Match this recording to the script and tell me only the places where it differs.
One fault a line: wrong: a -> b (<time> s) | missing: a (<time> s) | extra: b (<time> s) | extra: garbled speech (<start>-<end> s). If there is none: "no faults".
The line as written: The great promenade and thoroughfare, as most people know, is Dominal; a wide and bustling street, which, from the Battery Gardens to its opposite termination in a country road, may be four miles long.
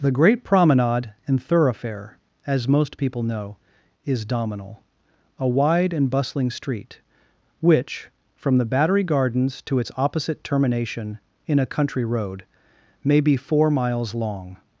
no faults